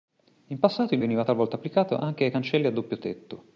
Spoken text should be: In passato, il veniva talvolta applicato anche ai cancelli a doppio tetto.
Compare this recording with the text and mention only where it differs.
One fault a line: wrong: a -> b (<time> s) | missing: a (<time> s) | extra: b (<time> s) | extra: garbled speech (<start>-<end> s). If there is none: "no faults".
no faults